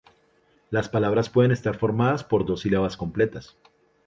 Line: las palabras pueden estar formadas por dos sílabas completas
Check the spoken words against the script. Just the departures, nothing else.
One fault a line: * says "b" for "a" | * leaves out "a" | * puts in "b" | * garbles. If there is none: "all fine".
all fine